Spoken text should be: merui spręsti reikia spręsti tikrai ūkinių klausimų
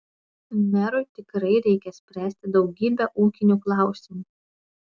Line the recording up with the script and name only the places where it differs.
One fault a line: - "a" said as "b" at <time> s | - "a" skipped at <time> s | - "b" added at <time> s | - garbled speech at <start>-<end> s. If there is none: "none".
- "spręsti" said as "tikrai" at 1.2 s
- "tikrai" said as "daugybę" at 2.6 s